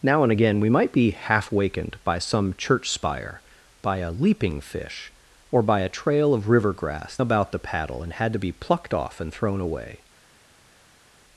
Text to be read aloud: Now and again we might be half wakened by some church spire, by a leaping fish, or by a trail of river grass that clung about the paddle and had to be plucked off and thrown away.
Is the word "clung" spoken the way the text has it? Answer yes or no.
no